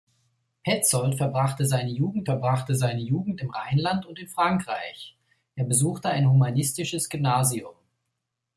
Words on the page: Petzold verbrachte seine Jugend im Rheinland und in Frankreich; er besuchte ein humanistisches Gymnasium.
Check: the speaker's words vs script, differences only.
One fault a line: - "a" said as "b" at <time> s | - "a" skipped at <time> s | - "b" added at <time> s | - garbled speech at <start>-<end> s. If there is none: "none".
- "verbrachte seine Jugend" added at 2.2 s